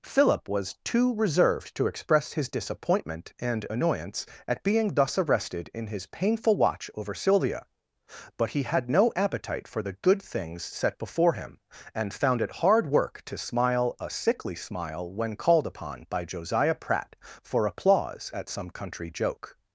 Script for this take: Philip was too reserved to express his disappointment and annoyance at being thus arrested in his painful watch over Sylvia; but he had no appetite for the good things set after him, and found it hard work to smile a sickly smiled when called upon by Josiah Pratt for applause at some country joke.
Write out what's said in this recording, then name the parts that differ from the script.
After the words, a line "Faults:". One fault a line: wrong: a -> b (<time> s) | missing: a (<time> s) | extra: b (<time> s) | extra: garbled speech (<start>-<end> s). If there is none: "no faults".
Philip was too reserved to express his disappointment and annoyance at being thus arrested in his painful watch over Sylvia; but he had no appetite for the good things set before him, and found it hard work to smile a sickly smile when called upon by Josiah Pratt for applause at some country joke.
Faults:
wrong: after -> before (11.0 s)
wrong: smiled -> smile (14.5 s)